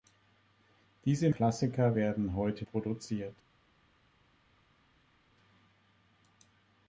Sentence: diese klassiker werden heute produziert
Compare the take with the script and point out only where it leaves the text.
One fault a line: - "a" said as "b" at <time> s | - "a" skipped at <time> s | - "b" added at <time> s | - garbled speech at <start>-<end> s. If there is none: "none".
none